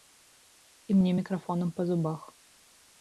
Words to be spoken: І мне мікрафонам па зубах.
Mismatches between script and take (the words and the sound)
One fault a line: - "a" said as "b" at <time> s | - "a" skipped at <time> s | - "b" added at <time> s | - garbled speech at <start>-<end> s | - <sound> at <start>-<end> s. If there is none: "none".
none